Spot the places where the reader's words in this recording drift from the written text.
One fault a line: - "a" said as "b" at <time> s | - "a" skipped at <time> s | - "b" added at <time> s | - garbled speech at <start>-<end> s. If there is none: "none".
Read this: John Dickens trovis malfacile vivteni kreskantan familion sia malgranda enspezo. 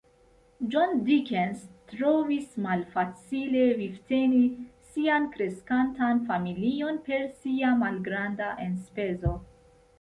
- "sian" added at 5.0 s
- "per" added at 7.1 s